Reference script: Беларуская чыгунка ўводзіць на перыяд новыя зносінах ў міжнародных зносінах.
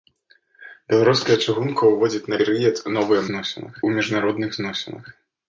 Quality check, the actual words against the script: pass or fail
pass